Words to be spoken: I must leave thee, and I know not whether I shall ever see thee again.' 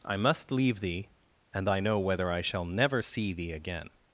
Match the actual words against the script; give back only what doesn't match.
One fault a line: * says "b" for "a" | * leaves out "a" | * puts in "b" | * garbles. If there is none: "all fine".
* leaves out "not"
* says "never" for "ever"